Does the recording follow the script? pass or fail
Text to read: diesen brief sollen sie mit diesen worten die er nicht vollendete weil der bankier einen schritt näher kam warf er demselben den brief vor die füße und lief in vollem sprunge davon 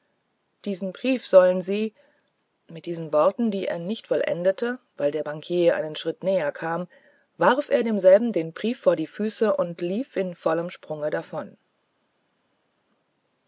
pass